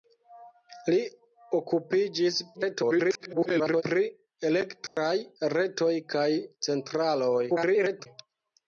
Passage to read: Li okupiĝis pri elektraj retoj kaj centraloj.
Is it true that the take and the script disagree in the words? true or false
true